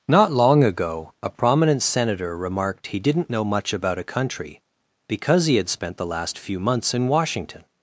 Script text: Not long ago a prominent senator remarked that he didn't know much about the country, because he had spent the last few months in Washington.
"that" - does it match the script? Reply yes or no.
no